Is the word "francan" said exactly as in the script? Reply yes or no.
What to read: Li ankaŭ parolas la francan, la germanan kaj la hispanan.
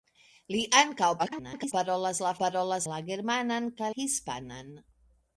no